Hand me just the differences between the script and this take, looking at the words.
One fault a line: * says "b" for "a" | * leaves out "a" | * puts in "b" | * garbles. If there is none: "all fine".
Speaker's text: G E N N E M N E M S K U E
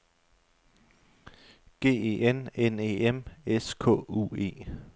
* leaves out "N E M"